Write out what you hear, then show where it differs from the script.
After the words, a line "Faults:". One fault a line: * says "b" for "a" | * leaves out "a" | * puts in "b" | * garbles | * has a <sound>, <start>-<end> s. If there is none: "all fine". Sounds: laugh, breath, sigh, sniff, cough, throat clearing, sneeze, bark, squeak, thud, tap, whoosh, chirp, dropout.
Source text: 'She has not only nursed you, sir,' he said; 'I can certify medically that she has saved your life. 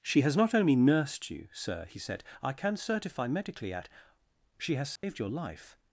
'She has not only nursed you, sir,' he said; 'I can certify medically at she has saved your life.
Faults:
* says "at" for "that"
* has a dropout, 5.0-5.0 s